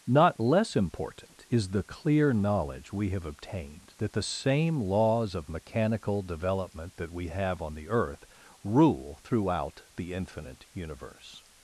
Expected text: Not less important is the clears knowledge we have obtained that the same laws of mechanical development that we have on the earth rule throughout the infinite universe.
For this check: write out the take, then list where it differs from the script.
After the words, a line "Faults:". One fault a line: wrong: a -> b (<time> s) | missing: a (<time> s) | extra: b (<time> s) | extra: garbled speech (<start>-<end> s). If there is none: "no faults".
Not less important is the clear knowledge we have obtained that the same laws of mechanical development that we have on the earth rule throughout the infinite universe.
Faults:
wrong: clears -> clear (1.8 s)